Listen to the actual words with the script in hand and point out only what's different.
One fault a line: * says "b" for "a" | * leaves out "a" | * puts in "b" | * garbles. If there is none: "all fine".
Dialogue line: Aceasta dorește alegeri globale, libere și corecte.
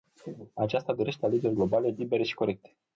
all fine